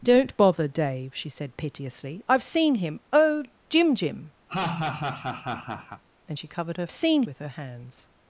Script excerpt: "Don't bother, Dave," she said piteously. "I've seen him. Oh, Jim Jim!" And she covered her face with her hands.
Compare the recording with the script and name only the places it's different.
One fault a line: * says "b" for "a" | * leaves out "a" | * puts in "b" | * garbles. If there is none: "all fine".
* says "seen" for "face"